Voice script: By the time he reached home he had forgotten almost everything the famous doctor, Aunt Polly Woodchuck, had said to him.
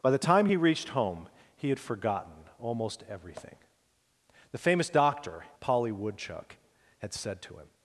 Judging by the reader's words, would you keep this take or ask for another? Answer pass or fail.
fail